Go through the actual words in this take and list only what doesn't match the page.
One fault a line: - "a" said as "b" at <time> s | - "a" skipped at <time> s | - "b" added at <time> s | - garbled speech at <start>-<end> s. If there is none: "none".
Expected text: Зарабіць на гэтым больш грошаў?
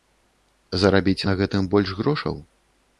none